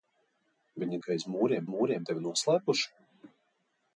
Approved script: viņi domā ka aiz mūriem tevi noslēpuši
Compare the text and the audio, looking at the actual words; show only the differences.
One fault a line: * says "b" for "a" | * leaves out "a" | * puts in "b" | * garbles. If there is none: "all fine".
* leaves out "domā"
* puts in "mūriem"